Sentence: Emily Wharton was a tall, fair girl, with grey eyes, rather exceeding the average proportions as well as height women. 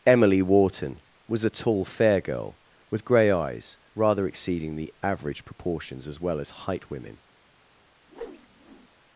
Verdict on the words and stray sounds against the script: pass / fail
fail